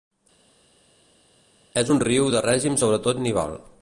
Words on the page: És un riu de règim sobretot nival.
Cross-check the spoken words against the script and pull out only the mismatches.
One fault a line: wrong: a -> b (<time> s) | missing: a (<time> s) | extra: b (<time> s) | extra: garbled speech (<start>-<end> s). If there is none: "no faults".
no faults